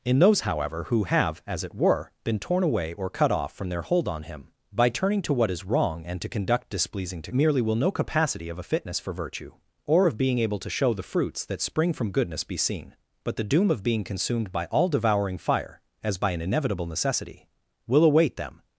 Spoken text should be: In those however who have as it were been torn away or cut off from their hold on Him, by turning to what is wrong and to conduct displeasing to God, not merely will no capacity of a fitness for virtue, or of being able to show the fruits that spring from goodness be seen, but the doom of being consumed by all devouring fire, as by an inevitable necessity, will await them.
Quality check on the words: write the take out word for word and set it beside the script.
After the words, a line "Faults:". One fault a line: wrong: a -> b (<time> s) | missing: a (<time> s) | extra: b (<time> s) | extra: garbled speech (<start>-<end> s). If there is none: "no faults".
In those however who have as it were been torn away or cut off from their hold on Him, by turning to what is wrong and to conduct displeasing to Merely will no capacity of a fitness for virtue, or of being able to show the fruits that spring from goodness be seen, but the doom of being consumed by all devouring fire, as by an inevitable necessity, will await them.
Faults:
missing: God not (7.3 s)